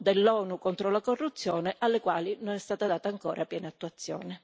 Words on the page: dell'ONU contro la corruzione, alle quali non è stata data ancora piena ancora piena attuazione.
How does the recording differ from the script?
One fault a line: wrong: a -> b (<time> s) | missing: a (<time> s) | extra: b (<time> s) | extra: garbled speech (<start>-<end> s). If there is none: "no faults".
missing: ancora piena (3.7 s)